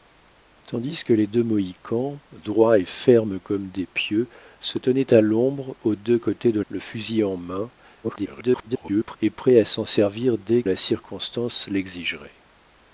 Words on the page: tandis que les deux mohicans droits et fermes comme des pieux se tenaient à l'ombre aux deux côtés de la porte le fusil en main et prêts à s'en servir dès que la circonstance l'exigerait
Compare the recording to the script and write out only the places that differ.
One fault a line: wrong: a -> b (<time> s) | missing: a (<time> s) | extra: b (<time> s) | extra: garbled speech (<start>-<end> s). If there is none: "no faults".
missing: la porte (6.6 s)
extra: garbled speech (8.0-9.2 s)
missing: que (10.6 s)